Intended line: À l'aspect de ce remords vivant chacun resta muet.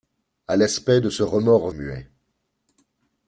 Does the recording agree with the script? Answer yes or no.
no